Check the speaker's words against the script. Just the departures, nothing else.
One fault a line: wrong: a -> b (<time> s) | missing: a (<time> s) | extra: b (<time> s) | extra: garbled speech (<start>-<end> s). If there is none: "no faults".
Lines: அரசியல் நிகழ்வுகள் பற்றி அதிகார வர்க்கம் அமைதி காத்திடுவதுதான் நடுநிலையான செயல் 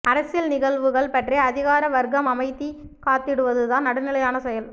no faults